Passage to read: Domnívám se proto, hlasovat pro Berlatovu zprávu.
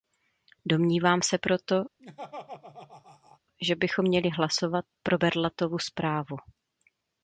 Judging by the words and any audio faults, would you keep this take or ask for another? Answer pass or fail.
fail